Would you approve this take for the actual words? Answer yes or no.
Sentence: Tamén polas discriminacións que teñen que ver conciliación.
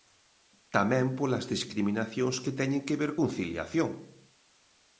yes